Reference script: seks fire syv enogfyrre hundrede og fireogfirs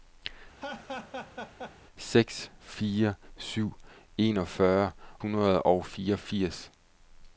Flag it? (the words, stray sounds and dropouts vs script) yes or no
yes